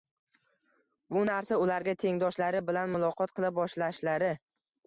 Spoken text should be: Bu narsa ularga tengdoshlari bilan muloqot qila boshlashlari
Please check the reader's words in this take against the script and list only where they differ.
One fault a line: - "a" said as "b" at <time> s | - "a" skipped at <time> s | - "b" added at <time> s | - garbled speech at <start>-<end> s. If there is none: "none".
none